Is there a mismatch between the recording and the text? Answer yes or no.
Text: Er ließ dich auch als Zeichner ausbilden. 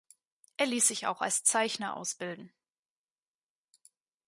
yes